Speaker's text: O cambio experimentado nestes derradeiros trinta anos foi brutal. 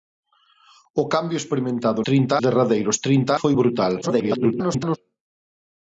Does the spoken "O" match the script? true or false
true